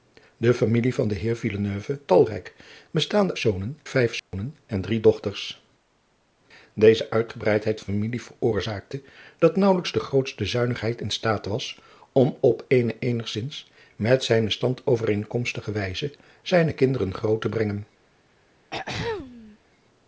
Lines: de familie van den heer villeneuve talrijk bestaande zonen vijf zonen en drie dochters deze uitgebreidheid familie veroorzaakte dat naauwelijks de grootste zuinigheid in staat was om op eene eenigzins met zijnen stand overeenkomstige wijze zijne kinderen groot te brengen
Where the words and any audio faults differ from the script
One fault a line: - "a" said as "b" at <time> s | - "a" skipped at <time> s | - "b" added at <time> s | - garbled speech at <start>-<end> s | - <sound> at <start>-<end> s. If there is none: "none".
- dropout at 4.2-4.3 s
- throat clearing at 18.7-19.6 s